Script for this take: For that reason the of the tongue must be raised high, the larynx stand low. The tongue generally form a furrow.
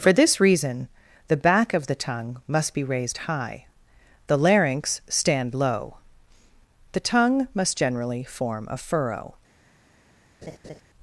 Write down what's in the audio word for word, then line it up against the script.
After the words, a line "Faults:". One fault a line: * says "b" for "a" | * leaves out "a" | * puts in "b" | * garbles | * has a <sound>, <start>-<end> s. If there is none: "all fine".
For this reason the back of the tongue must be raised high, the larynx stand low. The tongue must generally form a furrow.
Faults:
* says "this" for "that"
* puts in "back"
* puts in "must"
* has a laugh, 10.4-10.8 s